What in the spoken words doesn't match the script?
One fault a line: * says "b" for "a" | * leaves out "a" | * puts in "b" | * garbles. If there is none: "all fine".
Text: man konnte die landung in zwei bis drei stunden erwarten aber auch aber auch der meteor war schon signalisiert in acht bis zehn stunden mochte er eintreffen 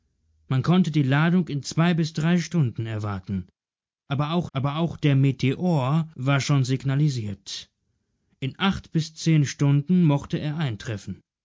all fine